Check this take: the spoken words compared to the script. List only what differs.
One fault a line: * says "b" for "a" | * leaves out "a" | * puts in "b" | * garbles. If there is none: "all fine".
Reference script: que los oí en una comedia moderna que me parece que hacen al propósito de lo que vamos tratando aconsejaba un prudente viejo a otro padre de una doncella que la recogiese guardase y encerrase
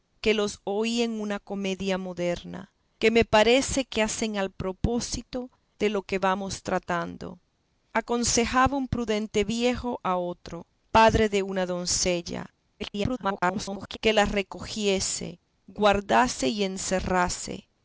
* garbles